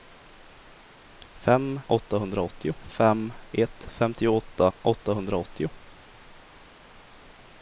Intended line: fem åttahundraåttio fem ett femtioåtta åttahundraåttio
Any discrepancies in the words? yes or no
no